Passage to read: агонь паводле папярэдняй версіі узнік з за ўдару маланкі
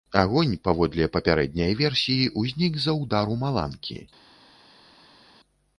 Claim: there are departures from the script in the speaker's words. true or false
false